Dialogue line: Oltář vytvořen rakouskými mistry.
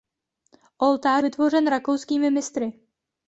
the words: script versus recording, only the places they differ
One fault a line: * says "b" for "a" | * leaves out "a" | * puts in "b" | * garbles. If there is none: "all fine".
all fine